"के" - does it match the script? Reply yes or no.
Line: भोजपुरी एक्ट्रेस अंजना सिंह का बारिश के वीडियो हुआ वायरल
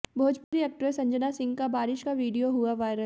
no